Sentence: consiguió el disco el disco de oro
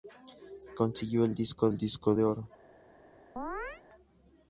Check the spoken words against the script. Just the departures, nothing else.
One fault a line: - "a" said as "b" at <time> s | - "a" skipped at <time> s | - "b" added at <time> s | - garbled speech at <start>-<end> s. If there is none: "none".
none